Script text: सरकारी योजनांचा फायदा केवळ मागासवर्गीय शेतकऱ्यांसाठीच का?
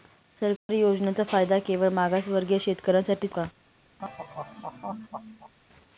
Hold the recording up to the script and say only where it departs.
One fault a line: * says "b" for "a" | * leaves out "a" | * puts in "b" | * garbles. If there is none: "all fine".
all fine